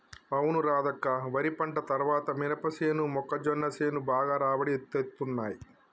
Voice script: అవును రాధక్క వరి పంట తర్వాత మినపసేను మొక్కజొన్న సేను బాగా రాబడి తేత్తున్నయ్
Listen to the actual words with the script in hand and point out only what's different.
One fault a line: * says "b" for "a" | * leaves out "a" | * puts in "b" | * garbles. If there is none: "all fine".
all fine